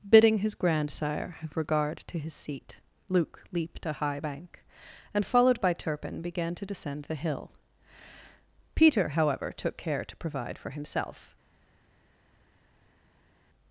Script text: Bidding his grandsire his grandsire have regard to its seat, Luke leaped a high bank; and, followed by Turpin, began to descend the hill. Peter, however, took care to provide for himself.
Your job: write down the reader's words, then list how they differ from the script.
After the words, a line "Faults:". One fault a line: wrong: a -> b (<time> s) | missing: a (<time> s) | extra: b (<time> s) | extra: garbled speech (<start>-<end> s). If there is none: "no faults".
Bidding his grandsire have regard to his seat, Luke leaped a high bank; and, followed by Turpin, began to descend the hill. Peter, however, took care to provide for himself.
Faults:
missing: his grandsire (1.4 s)
wrong: its -> his (2.2 s)